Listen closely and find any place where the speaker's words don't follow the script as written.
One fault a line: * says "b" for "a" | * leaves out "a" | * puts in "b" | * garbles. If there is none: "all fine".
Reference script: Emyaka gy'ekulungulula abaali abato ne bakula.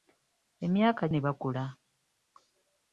* leaves out "gy'ekulungulula abaali abato"